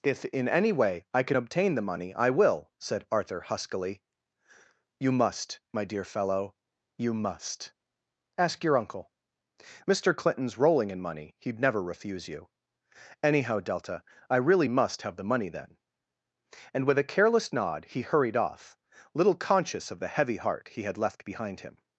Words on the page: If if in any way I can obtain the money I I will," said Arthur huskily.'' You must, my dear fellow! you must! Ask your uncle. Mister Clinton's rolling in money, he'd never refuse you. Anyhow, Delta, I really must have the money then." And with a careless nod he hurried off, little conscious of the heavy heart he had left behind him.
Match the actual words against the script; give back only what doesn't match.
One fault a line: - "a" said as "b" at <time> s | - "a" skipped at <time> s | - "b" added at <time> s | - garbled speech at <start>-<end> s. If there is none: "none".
- "if" skipped at 0.2 s
- "I" skipped at 2.3 s